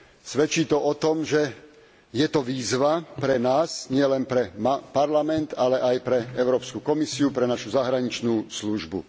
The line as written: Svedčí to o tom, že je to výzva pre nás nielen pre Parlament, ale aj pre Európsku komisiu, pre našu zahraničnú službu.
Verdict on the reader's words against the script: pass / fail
pass